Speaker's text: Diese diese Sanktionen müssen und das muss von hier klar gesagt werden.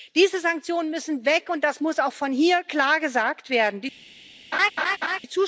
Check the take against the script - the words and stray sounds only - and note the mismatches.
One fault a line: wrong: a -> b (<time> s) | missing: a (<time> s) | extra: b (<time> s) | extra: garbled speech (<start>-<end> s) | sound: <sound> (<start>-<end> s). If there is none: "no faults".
missing: diese (0.4 s)
extra: weg (1.2 s)
extra: auch (2.0 s)
sound: laugh (4.5-5.2 s)